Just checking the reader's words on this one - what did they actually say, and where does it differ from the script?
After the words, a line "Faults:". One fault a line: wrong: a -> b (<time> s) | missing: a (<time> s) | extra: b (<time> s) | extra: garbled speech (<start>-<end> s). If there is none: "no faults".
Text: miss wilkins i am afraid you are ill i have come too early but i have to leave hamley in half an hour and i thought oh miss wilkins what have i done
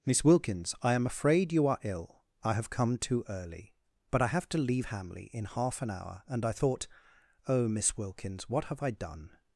miss wilkins i am afraid you are ill i have come too early but i have to leave hamley in half an hour and i thought oh miss wilkins what have i done
Faults:
no faults